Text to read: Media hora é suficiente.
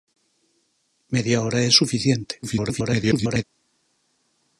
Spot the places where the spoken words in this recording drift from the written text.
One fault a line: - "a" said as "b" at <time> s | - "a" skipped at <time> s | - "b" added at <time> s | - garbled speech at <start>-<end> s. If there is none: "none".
- garbled speech at 2.4-3.4 s